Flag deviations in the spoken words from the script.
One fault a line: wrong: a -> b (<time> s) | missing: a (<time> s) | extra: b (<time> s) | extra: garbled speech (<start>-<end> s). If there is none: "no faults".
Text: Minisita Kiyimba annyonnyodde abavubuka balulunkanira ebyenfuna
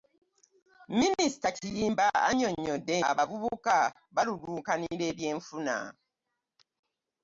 no faults